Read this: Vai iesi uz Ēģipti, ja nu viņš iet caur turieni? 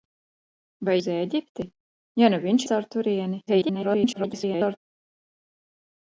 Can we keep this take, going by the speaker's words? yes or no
no